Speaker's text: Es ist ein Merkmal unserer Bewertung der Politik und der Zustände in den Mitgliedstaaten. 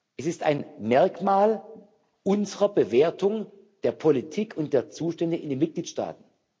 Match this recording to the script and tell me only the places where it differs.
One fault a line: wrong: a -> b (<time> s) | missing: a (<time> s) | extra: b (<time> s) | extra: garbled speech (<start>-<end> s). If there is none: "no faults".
no faults